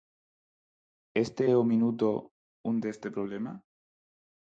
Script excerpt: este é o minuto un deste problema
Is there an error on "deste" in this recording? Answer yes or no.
no